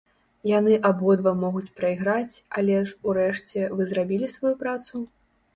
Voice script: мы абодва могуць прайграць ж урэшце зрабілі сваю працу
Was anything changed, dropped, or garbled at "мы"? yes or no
yes